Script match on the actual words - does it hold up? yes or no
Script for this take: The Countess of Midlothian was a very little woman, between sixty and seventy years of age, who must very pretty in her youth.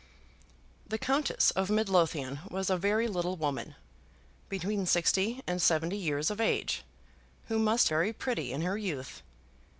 yes